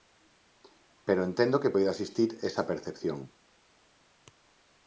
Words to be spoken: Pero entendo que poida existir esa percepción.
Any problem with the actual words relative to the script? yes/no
no